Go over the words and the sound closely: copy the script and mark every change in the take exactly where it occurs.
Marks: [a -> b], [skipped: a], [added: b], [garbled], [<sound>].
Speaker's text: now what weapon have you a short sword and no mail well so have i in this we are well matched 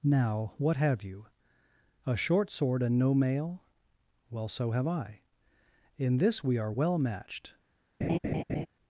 now what [skipped: weapon] have you a short sword and no mail well so have i in this we are well matched [laugh]